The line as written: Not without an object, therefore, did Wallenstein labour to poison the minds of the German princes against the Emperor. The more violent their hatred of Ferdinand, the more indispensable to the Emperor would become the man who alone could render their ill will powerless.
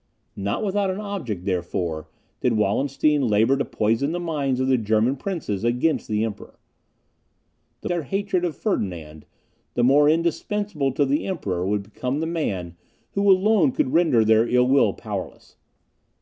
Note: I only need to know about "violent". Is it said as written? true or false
false